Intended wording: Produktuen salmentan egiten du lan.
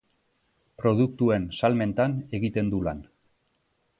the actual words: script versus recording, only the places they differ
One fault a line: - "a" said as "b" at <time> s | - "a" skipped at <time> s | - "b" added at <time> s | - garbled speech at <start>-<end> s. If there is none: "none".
none